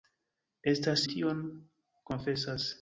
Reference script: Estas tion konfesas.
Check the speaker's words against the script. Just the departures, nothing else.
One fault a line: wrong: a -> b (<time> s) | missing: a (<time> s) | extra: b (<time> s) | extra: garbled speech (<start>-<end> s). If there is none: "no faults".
no faults